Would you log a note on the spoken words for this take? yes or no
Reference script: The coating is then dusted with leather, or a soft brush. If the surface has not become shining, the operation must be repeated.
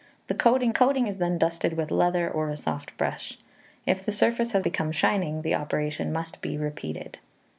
yes